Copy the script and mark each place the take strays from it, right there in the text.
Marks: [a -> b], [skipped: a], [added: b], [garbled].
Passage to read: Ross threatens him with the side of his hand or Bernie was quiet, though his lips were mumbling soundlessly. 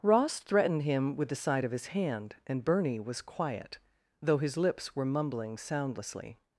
Ross [threatens -> threatened] him with the side of his hand [or -> and] Bernie was quiet, though his lips were mumbling soundlessly.